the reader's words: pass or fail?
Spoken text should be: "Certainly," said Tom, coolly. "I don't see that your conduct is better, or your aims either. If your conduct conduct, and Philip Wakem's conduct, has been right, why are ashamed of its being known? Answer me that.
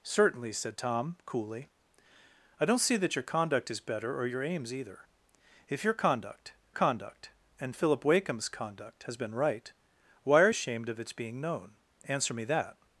pass